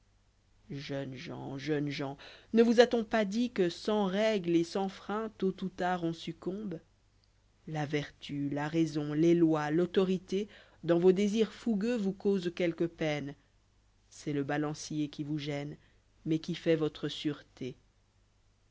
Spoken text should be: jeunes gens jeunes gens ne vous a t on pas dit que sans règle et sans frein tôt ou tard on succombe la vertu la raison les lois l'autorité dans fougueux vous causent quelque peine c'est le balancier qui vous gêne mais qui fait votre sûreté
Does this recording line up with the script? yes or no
no